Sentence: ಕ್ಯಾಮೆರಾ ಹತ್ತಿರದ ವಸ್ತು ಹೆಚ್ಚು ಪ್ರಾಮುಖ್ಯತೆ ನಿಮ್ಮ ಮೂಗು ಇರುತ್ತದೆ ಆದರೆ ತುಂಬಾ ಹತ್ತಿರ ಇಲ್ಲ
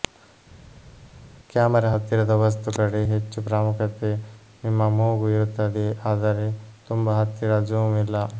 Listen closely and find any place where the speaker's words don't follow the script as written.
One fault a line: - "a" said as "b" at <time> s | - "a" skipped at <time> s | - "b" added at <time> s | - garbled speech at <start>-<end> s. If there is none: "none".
- "ಕಡೆ" added at 2.8 s
- "ಜೂಮ್" added at 7.7 s